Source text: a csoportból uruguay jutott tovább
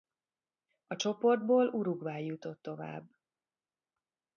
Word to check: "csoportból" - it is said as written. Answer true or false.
true